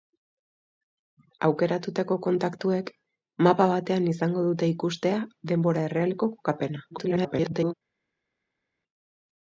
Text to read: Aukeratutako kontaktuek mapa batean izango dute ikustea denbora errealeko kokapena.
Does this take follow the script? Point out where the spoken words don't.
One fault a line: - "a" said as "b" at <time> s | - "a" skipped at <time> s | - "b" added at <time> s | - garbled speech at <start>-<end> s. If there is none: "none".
- garbled speech at 6.9-7.7 s